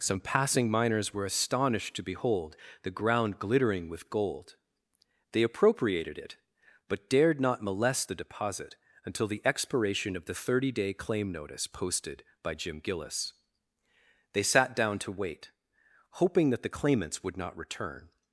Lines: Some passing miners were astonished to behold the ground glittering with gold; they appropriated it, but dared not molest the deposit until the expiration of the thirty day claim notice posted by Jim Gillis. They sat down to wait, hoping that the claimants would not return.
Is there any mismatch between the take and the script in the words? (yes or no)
no